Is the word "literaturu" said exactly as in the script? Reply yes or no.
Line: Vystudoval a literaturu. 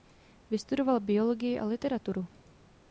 yes